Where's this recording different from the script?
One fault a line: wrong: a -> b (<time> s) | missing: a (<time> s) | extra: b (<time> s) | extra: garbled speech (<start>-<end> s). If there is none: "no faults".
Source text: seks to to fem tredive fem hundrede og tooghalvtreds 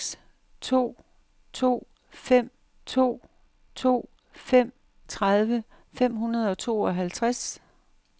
extra: to to fem (2.9 s)